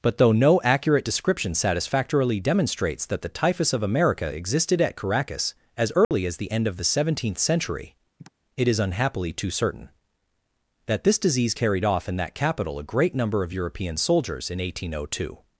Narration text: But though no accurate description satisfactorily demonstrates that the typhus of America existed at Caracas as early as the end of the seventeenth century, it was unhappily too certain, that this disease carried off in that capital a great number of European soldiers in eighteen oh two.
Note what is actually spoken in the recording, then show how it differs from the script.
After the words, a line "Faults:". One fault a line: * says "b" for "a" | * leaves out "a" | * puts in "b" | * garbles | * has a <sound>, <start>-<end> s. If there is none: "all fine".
But though no accurate description satisfactorily demonstrates that the typhus of America existed at Caracas as early as the end of the seventeenth century, it is unhappily too certain, that this disease carried off in that capital a great number of European soldiers in eighteen oh two.
Faults:
* has a dropout, 6.0-6.1 s
* has a sigh, 8.2-8.3 s
* says "is" for "was"